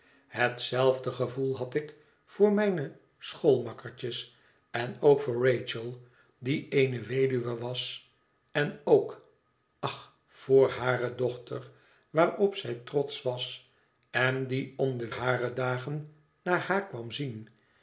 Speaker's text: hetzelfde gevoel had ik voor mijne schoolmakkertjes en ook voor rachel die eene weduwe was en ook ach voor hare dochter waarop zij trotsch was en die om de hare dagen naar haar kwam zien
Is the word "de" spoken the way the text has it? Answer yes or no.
yes